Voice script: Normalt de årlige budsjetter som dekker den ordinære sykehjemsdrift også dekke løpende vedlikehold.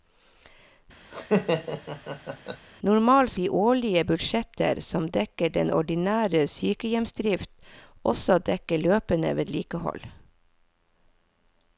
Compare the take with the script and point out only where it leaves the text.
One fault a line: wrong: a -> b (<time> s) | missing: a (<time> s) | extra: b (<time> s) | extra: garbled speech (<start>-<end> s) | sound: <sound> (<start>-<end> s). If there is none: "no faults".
sound: laugh (1.1-2.7 s)